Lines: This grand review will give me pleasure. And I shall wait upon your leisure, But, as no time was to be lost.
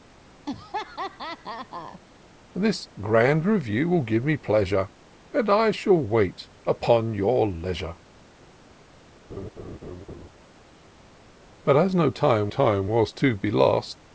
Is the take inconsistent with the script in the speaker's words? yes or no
yes